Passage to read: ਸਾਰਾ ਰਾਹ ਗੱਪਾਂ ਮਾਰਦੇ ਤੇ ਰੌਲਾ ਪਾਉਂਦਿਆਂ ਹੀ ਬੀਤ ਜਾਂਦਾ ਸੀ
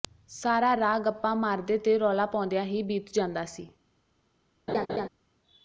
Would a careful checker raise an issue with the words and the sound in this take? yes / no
yes